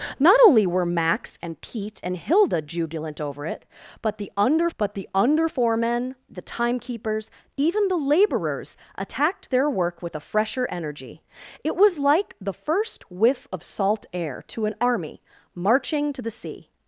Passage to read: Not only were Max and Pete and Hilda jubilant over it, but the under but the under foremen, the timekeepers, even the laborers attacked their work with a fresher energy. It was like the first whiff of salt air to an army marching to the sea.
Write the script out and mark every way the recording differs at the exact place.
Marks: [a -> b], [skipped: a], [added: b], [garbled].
Not only were Max and Pete and Hilda jubilant over it, but the under but the under foremen, the timekeepers, even the laborers attacked their work with a fresher energy. It was like the first whiff of salt air to an army marching to the sea.